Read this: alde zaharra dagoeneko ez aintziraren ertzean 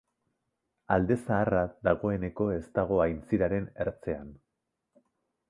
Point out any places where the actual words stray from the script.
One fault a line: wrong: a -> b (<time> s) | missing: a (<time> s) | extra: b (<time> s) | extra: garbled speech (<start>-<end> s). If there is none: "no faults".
extra: dago (2.8 s)